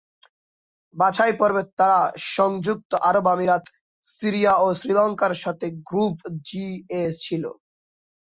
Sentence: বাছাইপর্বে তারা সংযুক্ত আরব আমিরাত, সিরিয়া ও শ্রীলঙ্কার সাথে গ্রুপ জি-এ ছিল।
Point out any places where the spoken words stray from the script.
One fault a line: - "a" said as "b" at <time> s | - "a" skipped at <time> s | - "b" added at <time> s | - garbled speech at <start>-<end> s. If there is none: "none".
none